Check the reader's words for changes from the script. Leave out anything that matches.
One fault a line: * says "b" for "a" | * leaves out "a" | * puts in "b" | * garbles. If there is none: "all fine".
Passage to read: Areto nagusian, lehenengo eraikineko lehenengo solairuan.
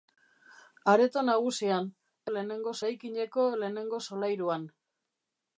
all fine